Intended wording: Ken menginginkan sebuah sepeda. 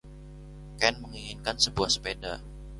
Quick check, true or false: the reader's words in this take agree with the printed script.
true